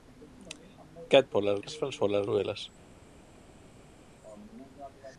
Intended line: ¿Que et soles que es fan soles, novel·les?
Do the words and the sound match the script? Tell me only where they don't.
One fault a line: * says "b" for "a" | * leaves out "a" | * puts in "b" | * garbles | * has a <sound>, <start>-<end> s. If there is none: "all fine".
all fine